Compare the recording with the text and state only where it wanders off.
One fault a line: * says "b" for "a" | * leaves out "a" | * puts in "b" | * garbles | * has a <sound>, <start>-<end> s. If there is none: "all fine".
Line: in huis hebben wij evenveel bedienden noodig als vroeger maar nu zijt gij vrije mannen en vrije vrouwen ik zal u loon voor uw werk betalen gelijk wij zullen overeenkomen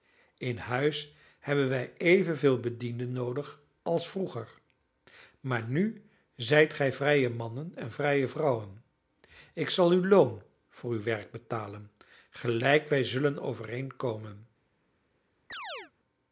* has a chirp, 15.5-15.9 s